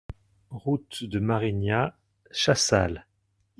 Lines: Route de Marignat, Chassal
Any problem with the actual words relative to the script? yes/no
no